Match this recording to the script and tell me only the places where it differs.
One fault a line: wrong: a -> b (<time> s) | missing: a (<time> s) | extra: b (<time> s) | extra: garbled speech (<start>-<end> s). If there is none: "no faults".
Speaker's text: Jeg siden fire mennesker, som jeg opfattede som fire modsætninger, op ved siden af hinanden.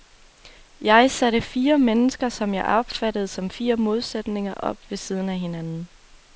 wrong: siden -> satte (1.1 s)